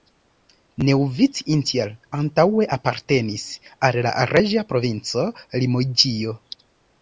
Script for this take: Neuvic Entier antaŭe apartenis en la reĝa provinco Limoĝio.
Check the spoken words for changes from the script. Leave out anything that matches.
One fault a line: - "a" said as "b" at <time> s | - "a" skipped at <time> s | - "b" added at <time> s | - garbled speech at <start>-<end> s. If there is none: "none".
- "en" said as "al" at 3.9 s